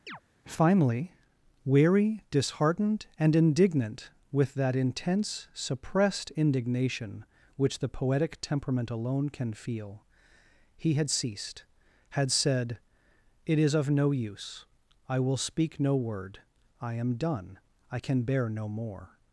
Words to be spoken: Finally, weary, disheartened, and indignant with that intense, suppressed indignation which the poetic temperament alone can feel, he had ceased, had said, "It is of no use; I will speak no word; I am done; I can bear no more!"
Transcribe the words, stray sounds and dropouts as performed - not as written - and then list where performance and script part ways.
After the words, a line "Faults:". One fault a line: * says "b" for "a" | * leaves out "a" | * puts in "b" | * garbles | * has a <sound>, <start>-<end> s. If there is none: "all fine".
Finally, weary, disheartened, and indignant with that intense, suppressed indignation which the poetic temperament alone can feel, he had ceased, had said, "It is of no use; I will speak no word; I am done; I can bear no more!"
Faults:
* has a chirp, 0.1-0.2 s